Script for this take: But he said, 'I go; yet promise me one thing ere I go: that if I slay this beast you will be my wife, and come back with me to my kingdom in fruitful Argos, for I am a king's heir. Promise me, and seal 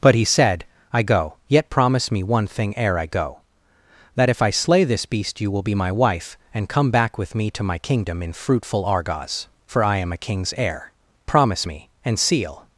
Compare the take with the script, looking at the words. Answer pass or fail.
pass